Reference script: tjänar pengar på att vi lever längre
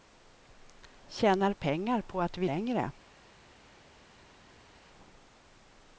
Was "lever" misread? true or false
true